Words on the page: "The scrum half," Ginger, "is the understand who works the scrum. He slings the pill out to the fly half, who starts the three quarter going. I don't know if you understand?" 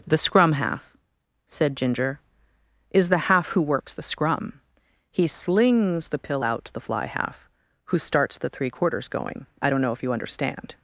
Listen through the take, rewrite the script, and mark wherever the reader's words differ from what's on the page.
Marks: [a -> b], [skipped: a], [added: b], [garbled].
"The scrum half," [added: said] Ginger, "is the [understand -> half] who works the scrum. He slings the pill out to the fly half, who starts the three [quarter -> quarters] going. I don't know if you understand?"